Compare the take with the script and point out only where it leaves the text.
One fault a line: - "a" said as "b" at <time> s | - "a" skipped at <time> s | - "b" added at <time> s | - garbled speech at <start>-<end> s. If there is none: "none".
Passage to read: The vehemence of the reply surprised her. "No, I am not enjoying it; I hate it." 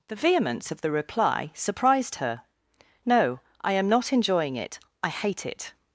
none